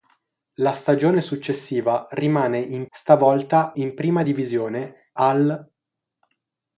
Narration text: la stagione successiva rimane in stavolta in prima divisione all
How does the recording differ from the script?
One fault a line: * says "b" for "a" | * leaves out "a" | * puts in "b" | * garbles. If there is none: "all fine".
all fine